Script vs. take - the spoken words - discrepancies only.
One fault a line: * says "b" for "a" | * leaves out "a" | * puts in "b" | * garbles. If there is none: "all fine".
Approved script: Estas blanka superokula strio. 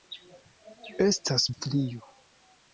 * leaves out "blanka superokula"